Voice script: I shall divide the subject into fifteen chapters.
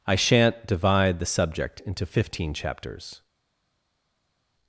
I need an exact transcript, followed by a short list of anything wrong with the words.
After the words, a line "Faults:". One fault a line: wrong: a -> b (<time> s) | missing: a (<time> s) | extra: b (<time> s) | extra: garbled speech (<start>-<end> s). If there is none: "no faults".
I shan't divide the subject into fifteen chapters.
Faults:
wrong: shall -> shan't (0.1 s)